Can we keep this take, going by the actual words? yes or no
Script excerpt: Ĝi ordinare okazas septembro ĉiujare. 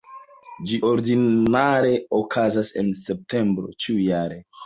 no